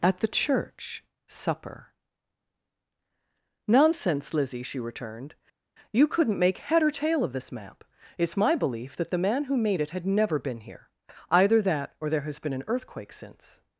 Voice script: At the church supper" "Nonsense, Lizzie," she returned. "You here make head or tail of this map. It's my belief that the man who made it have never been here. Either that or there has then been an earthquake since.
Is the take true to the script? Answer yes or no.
no